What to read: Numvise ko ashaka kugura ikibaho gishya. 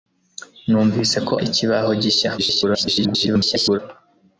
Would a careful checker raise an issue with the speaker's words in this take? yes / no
yes